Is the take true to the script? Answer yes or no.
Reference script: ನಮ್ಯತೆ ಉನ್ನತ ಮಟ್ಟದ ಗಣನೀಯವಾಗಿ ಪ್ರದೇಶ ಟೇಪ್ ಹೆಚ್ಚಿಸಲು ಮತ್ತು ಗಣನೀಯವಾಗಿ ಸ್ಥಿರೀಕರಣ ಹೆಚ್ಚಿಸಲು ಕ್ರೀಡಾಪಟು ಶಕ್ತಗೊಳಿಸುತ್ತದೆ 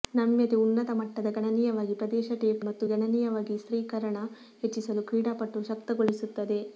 no